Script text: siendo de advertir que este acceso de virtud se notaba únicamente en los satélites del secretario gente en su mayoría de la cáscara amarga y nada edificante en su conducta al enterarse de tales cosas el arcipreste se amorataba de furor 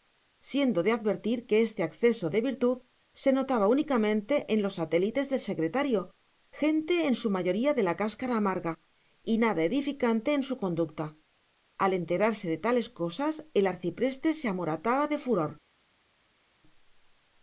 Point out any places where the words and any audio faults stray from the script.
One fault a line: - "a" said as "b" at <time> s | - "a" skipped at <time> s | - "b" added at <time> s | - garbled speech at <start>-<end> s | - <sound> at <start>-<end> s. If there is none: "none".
none